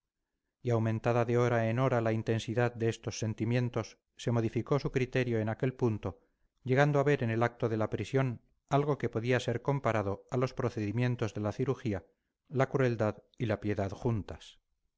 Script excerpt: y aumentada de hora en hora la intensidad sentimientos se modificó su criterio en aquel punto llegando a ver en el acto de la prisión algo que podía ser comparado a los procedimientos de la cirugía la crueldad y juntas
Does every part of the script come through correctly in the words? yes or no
no